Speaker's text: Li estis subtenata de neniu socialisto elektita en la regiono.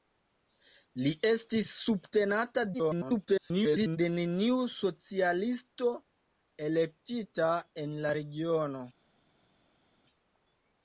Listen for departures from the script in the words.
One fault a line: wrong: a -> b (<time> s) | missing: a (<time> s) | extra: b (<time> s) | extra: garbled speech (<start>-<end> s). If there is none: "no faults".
extra: garbled speech (2.7-4.0 s)